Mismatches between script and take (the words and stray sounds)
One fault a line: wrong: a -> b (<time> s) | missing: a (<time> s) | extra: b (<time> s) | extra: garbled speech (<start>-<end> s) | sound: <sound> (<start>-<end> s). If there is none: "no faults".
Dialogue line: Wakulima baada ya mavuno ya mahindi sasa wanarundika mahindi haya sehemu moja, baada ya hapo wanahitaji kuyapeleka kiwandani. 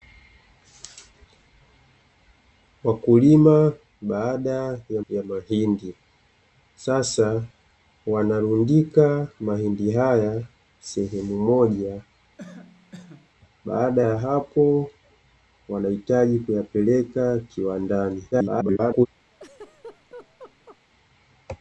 missing: mavuno (5.0 s)
sound: cough (12.4-13.3 s)
extra: garbled speech (18.3-19.1 s)
sound: laugh (19.3-20.8 s)